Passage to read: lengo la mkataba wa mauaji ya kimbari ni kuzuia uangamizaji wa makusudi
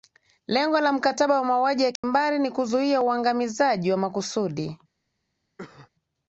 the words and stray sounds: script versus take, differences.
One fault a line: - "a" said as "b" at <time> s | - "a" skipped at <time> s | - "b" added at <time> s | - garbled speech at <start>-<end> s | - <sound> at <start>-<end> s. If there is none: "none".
- dropout at 2.0-2.0 s
- cough at 5.6-5.9 s